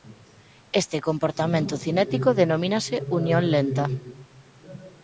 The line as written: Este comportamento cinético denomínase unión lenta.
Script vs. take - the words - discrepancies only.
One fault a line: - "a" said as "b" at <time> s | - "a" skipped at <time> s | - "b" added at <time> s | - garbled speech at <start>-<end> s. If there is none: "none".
none